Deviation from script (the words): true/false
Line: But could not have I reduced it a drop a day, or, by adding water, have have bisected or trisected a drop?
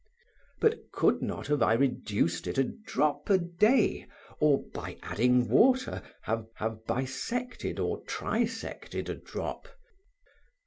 false